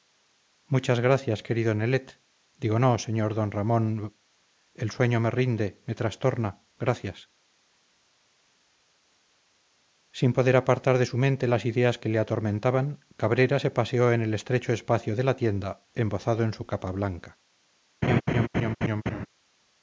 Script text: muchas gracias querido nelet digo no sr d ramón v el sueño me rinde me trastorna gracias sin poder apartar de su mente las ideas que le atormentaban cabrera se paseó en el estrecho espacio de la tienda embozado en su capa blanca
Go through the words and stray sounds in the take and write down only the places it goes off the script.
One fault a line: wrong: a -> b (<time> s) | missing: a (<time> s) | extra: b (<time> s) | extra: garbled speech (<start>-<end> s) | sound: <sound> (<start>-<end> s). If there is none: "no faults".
sound: laugh (18.0-19.3 s)